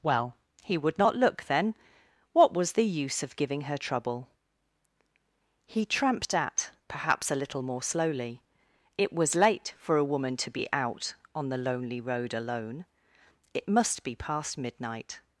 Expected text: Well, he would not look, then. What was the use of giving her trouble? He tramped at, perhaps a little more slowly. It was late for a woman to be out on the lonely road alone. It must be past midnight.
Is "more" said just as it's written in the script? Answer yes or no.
yes